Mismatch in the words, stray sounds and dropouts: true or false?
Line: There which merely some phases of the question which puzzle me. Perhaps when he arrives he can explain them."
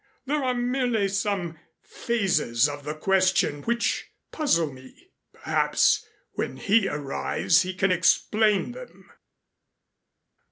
true